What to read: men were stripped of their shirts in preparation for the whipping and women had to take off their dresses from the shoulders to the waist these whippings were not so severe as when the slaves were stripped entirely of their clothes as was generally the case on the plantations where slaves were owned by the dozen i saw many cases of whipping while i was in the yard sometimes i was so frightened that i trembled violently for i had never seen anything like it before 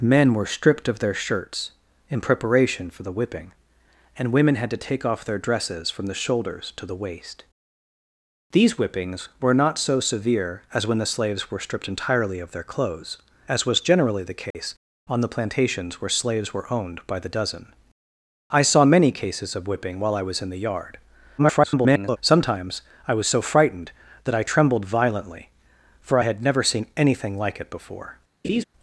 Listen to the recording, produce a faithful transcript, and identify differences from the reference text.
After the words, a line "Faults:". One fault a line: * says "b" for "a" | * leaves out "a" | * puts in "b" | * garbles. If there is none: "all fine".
men were stripped of their shirts in preparation for the whipping and women had to take off their dresses from the shoulders to the waist these whippings were not so severe as when the slaves were stripped entirely of their clothes as was generally the case on the plantations where slaves were owned by the dozen i saw many cases of whipping while i was in the yard [garbled] sometimes i was so frightened that i trembled violently for i had never seen anything like it before
Faults:
* garbles